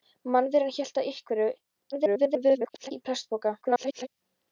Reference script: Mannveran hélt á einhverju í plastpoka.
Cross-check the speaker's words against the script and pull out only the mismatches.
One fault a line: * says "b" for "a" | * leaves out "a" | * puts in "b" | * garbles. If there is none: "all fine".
* garbles
* garbles